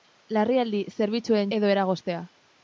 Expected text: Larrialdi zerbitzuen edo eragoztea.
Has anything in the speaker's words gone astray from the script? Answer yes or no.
no